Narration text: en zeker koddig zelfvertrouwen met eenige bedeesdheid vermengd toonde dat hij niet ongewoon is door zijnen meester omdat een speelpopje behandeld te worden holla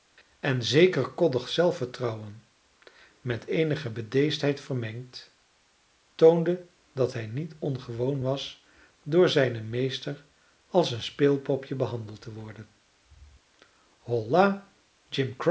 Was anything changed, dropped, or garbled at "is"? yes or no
yes